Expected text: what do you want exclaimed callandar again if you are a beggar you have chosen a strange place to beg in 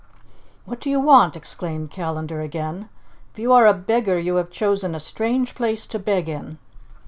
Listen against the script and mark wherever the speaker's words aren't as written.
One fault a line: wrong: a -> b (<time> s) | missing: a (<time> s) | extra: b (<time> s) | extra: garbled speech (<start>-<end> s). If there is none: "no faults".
no faults